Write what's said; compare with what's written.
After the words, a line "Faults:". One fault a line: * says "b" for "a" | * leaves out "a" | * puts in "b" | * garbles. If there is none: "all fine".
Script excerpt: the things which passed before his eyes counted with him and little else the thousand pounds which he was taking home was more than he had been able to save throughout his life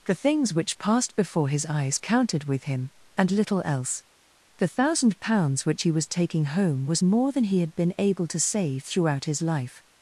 the things which passed before his eyes counted with him and little else the thousand pounds which he was taking home was more than he had been able to save throughout his life
Faults:
all fine